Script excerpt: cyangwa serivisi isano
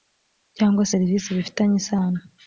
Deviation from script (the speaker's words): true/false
true